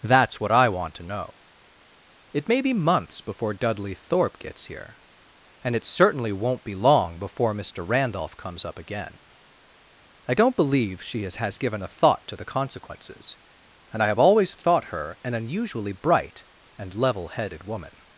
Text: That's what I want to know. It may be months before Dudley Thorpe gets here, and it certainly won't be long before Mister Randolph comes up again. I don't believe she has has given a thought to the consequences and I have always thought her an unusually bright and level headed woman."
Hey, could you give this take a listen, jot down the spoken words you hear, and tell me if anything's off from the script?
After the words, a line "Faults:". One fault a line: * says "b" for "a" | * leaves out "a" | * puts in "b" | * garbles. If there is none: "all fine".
That's what I want to know. It may be months before Dudley Thorpe gets here, and it certainly won't be long before Mister Randolph comes up again. I don't believe she has has given a thought to the consequences and I have always thought her an unusually bright and level headed woman."
Faults:
all fine